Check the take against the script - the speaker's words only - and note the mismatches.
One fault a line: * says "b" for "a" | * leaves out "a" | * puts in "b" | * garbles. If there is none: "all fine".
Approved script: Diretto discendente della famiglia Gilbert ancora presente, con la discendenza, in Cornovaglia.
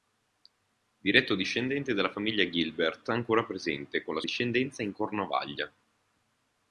all fine